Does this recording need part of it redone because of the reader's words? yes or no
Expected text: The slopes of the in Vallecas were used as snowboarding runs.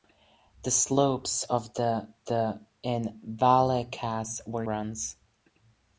yes